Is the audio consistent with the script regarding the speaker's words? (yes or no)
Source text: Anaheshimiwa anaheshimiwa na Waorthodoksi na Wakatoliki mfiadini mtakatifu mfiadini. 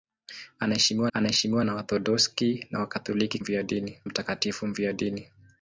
yes